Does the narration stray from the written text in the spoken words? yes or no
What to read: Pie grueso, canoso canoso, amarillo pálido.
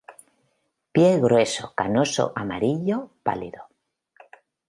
yes